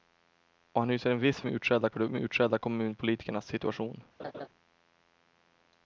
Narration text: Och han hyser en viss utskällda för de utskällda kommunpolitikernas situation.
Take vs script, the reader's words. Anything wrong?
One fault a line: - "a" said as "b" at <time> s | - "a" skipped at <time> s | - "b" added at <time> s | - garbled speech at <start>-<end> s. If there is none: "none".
none